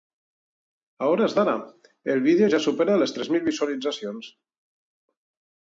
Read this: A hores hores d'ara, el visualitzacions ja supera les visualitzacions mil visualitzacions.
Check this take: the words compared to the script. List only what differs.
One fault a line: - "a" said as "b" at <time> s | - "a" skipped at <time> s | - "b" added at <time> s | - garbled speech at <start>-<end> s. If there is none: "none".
- "hores" skipped at 1.4 s
- "visualitzacions" said as "vídeo" at 2.3 s
- "visualitzacions" said as "tres" at 3.2 s